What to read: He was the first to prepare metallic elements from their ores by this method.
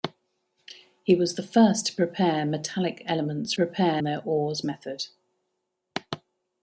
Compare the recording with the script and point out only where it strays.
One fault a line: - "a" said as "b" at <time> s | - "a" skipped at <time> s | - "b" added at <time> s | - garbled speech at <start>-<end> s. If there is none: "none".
- "from" said as "prepare" at 3.5 s
- "by this" skipped at 4.6 s